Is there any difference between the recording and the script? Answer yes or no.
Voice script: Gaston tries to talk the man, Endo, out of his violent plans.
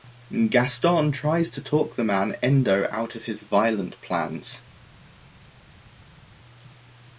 no